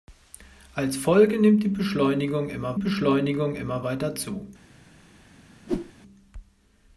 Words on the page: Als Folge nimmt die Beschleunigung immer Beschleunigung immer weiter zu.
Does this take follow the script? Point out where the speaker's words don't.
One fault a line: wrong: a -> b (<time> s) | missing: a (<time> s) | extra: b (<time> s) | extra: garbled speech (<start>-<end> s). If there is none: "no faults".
no faults